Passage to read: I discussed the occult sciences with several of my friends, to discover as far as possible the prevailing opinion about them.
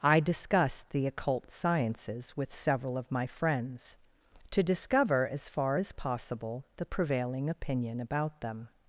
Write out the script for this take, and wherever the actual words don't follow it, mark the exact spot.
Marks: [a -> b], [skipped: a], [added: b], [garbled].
I discussed the occult sciences with several of my friends, to discover as far as possible the prevailing opinion about them.